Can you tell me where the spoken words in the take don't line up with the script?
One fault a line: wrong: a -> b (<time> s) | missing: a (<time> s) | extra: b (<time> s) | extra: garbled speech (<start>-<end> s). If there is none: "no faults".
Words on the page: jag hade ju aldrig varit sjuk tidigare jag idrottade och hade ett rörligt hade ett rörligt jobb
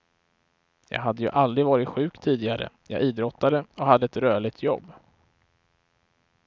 missing: hade ett rörligt (4.6 s)